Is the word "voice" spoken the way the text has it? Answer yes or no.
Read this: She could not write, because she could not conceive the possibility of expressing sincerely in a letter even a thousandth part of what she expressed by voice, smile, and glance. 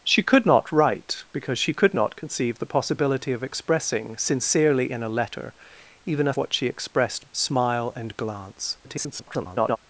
no